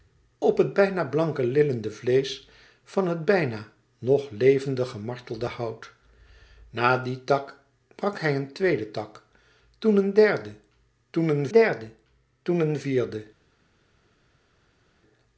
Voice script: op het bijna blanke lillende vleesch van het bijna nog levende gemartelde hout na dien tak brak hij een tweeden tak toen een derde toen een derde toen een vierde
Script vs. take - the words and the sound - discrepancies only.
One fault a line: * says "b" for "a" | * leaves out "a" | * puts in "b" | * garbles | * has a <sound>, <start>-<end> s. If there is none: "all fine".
all fine